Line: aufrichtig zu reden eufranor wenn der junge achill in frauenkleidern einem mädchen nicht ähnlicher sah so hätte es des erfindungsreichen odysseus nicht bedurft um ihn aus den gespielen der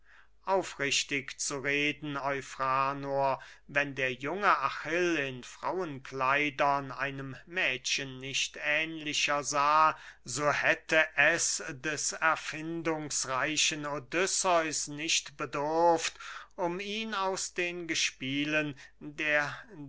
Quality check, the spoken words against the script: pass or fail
pass